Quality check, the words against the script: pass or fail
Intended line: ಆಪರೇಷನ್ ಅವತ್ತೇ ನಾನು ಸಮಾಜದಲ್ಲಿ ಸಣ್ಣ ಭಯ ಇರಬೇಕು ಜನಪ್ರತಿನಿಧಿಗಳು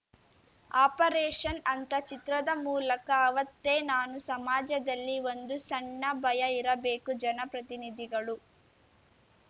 fail